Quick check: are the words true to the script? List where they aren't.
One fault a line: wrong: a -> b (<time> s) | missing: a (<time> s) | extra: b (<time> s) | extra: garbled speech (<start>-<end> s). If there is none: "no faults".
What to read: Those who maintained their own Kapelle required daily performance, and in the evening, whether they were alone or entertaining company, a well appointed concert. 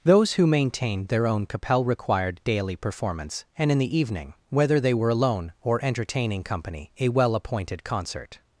no faults